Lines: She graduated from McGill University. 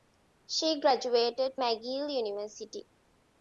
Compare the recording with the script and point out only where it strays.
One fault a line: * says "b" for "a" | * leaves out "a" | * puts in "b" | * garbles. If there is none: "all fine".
* leaves out "from"